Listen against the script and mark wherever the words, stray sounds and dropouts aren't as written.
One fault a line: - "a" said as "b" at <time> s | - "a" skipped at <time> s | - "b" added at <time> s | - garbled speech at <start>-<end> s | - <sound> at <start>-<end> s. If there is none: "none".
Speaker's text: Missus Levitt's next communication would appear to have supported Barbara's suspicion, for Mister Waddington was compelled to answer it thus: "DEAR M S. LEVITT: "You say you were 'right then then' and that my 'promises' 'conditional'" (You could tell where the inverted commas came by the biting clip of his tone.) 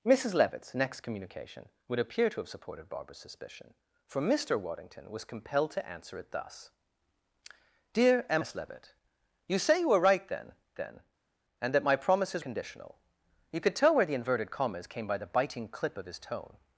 none